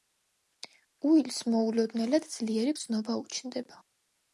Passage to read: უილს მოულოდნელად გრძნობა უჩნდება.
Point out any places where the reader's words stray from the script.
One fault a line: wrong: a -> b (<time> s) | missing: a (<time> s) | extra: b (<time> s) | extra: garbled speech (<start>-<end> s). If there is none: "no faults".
extra: ძლიერი (2.3 s)